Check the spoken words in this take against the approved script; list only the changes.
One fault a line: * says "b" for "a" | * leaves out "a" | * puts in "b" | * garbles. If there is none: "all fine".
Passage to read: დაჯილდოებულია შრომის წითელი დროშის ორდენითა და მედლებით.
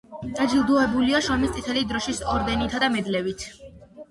all fine